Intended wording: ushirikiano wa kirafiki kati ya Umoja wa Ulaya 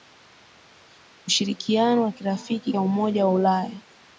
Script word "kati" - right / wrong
wrong